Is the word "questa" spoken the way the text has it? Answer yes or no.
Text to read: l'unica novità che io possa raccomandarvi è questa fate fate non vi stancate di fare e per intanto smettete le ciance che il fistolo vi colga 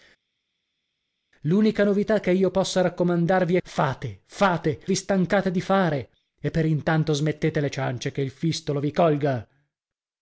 no